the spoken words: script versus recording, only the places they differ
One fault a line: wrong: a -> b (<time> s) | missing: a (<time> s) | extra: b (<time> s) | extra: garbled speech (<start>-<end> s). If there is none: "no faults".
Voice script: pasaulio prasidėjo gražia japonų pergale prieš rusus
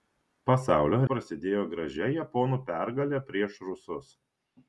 no faults